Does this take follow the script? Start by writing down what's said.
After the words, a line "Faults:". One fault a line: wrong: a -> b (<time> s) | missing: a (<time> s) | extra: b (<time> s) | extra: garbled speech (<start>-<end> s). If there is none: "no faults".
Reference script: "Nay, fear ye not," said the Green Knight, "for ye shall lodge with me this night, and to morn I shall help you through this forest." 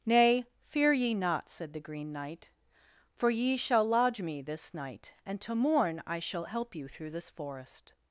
"Nay, fear ye not," said the Green Knight, "for ye shall lodge me this night, and to morn I shall help you through this forest."
Faults:
missing: with (4.2 s)